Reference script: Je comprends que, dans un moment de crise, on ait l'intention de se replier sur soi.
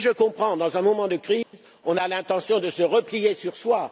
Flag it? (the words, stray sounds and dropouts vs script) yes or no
yes